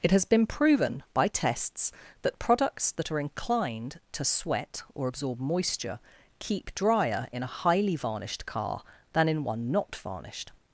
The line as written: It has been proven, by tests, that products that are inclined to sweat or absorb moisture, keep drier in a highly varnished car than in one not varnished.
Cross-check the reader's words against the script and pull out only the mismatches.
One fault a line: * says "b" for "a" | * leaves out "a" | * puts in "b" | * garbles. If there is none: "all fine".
all fine